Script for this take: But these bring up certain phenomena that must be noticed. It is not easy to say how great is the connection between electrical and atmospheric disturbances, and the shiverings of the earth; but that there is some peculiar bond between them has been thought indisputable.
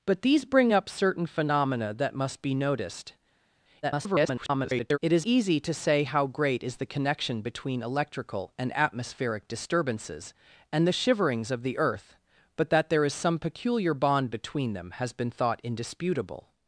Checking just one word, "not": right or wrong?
wrong